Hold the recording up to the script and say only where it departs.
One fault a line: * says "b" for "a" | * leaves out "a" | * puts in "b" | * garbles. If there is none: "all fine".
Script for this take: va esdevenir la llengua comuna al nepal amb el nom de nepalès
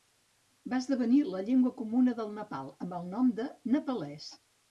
* says "del" for "al"